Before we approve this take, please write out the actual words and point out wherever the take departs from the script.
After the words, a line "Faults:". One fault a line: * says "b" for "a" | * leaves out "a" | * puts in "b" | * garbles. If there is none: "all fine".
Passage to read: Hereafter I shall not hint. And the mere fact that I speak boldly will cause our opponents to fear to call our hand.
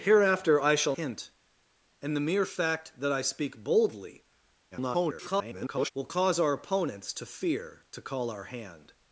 Hereafter I shall hint. And the mere fact that I speak boldly [garbled] will cause our opponents to fear to call our hand.
Faults:
* leaves out "not"
* garbles